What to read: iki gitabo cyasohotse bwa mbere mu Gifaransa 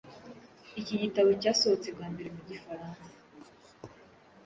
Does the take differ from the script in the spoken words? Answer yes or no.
no